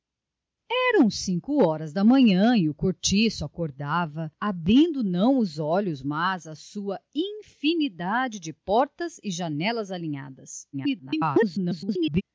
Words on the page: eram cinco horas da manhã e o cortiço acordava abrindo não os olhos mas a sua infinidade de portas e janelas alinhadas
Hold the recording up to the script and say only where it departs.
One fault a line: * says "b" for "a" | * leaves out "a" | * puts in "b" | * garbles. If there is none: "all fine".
* garbles